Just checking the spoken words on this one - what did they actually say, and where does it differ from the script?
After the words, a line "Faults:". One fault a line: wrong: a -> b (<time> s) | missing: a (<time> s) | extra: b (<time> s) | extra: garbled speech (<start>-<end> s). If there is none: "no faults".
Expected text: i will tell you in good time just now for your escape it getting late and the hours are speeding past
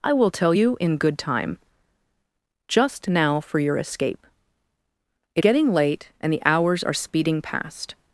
i will tell you in good time just now for your escape it getting late and the hours are speeding past
Faults:
no faults